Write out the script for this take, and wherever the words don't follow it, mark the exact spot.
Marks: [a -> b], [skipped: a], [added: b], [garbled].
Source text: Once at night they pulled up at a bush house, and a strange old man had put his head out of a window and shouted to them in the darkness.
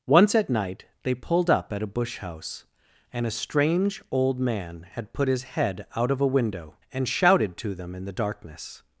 Once at night they pulled up at a bush house, and a strange old man had put his head out of a window and shouted to them in the darkness.